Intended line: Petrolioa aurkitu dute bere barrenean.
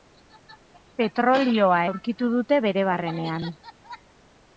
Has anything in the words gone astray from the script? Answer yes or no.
no